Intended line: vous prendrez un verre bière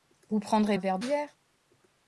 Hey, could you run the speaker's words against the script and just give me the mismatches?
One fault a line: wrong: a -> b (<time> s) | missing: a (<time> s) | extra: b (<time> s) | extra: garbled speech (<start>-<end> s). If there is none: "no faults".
no faults